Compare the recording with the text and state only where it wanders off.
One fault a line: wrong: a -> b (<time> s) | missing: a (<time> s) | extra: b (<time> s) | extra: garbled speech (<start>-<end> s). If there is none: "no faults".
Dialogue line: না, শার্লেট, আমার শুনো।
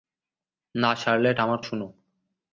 no faults